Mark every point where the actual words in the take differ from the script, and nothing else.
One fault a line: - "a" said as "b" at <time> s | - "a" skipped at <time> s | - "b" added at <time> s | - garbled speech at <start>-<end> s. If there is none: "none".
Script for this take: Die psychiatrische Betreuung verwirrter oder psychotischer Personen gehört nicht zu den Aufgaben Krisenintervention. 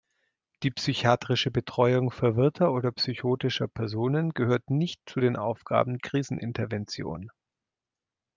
none